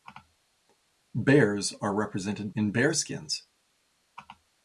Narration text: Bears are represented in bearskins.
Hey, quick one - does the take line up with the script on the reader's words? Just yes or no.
yes